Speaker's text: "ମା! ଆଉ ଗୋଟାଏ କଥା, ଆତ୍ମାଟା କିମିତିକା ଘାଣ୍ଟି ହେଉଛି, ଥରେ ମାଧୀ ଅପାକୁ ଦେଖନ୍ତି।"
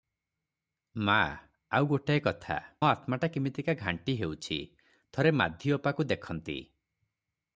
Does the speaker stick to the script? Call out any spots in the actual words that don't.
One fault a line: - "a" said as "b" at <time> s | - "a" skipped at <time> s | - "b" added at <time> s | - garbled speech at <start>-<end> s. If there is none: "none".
none